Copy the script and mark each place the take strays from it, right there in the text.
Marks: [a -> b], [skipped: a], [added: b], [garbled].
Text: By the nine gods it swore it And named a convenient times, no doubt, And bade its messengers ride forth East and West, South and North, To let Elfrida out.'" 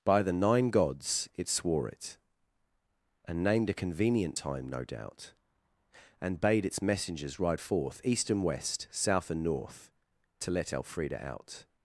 By the nine gods it swore it And named a convenient [times, -> time] no doubt, And bade its messengers ride forth East and West, South and North, To let Elfrida out.'"